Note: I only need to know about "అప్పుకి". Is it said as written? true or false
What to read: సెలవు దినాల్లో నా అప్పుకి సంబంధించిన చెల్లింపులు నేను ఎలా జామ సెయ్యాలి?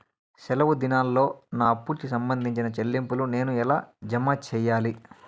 true